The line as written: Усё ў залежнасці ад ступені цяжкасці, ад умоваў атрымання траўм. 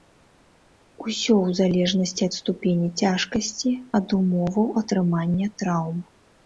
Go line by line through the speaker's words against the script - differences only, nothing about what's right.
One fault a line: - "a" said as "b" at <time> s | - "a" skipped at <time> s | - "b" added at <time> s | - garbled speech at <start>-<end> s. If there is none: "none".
none